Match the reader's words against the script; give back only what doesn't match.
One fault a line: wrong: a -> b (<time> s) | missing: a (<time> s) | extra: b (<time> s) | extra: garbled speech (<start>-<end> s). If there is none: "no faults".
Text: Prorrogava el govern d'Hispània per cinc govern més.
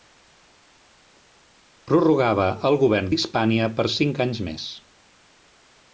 wrong: govern -> anys (4.3 s)